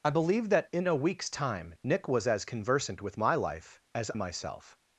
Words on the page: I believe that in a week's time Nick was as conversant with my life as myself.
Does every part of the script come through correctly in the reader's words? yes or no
yes